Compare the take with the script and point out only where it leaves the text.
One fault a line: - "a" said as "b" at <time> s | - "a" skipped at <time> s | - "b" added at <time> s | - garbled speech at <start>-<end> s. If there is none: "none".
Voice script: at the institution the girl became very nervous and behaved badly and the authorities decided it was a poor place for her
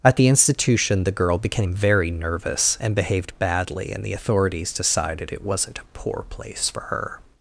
- "was" said as "wasn't" at 5.4 s